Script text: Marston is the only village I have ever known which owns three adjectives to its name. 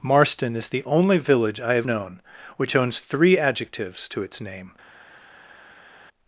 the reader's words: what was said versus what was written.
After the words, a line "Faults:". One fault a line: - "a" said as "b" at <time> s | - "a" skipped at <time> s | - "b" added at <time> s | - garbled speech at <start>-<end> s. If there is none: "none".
Marston is the only village I have known which owns three adjectives to its name.
Faults:
- "ever" skipped at 1.9 s